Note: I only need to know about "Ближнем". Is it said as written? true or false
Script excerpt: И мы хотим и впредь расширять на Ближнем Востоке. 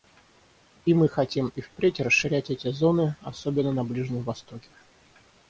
true